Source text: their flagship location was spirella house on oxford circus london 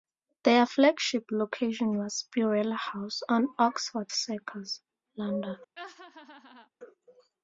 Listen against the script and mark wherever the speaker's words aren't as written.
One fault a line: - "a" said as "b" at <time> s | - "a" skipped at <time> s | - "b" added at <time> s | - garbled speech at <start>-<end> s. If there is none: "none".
none